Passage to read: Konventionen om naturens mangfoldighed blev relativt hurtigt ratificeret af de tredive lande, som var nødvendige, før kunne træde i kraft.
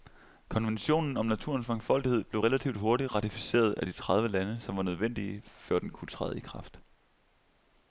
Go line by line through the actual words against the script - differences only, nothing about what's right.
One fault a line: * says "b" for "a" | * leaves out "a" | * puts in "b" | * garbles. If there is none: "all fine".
* puts in "den"